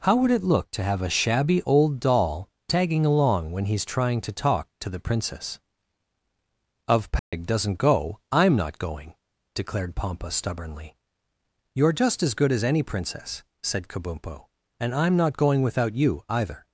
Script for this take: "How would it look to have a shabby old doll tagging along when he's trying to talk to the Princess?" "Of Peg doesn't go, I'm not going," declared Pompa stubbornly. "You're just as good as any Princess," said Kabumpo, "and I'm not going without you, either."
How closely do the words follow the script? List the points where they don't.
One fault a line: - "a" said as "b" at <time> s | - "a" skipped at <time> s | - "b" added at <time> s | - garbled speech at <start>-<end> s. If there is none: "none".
none